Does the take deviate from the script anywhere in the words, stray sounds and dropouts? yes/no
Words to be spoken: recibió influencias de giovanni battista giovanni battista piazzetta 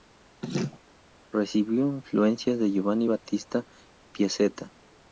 yes